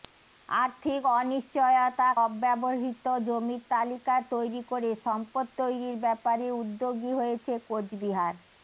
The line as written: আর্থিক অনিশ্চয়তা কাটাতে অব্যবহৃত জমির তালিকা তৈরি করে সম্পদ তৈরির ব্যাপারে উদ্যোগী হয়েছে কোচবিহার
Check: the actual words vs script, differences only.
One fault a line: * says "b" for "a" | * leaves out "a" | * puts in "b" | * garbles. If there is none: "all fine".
* leaves out "কাটাতে"